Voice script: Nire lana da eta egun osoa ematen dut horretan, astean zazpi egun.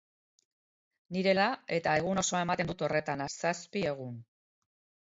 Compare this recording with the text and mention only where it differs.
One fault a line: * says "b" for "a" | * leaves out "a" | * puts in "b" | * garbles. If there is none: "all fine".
* leaves out "lana"
* leaves out "astean"